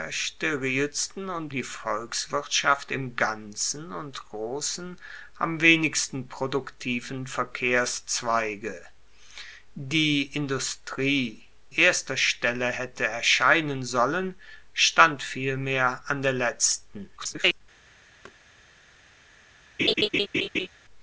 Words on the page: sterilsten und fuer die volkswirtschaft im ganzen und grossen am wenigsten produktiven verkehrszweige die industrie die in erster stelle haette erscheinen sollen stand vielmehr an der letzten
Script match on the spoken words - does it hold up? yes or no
no